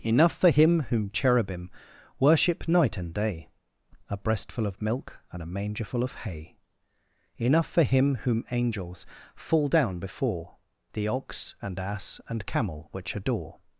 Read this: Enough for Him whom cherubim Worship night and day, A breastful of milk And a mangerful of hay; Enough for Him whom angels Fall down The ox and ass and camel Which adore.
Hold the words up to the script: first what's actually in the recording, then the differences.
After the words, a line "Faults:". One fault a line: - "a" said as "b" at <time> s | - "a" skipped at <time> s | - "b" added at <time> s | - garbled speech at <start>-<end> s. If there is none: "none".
Enough for Him whom cherubim Worship night and day, A breastful of milk And a mangerful of hay; Enough for Him whom angels Fall down before, The ox and ass and camel Which adore.
Faults:
- "before" added at 10.0 s